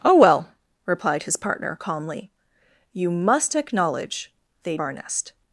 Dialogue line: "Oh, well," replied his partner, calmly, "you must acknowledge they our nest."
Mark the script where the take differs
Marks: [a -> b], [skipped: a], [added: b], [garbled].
"Oh, well," replied his partner, calmly, "you must acknowledge they our nest."